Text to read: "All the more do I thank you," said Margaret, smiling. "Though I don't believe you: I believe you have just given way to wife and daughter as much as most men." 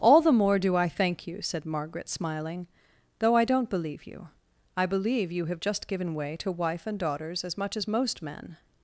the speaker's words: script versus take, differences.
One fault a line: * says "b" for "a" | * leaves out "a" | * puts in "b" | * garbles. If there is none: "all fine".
* says "daughters" for "daughter"